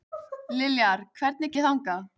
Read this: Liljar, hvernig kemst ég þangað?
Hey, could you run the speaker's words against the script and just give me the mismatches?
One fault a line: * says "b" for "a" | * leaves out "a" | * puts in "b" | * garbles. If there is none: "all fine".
* leaves out "kemst"